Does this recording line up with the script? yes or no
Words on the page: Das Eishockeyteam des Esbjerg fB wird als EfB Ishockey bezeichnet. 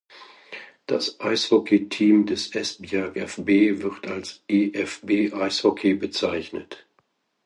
yes